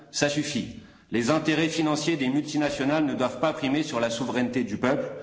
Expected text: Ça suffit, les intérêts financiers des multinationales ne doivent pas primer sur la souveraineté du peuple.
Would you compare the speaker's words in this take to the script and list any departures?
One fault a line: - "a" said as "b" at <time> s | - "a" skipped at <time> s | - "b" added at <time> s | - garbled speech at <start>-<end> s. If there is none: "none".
none